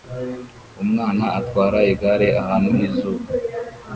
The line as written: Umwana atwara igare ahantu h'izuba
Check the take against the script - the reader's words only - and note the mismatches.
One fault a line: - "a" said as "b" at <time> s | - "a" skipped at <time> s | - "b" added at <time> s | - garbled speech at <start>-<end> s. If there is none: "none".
none